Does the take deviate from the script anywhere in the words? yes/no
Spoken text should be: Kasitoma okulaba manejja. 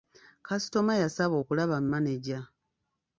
yes